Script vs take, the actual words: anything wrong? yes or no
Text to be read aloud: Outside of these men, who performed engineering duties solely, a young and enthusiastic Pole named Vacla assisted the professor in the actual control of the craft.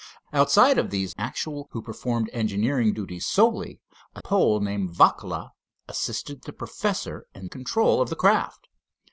yes